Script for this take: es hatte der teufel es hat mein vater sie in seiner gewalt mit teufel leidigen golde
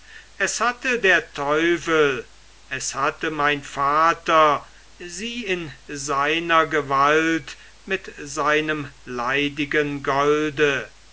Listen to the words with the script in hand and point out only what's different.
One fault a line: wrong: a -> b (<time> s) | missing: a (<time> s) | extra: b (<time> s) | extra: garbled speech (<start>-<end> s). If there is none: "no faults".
wrong: hat -> hatte (2.9 s)
wrong: teufel -> seinem (8.2 s)